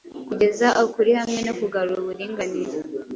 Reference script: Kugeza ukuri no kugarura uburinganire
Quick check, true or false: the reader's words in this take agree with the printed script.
false